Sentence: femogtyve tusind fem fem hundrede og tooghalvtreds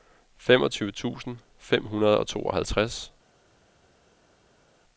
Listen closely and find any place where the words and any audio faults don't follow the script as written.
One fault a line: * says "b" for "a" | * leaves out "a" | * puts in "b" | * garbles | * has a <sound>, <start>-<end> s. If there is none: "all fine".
* leaves out "fem"